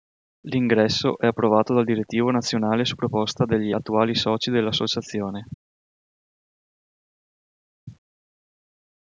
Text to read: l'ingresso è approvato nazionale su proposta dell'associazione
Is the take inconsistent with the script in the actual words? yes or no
yes